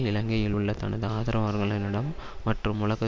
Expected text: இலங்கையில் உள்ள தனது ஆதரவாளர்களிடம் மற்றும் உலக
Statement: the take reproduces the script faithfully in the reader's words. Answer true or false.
true